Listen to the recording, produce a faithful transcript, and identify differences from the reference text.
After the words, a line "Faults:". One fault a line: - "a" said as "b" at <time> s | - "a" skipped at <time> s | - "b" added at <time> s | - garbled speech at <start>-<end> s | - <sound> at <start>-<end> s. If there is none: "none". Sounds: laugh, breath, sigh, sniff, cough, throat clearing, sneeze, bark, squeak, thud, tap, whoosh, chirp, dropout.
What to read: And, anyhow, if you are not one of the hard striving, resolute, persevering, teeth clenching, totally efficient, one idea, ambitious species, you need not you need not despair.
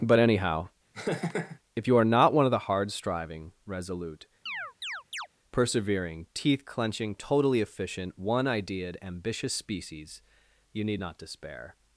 But, anyhow, if you are not one of the hard striving, resolute, persevering, teeth clenching, totally efficient, one ideaed, ambitious species, you need not despair.
Faults:
- "And" said as "But" at 0.0 s
- laugh at 0.9-1.6 s
- chirp at 4.5-5.3 s
- "idea" said as "ideaed" at 8.4 s
- "you need not" skipped at 11.2 s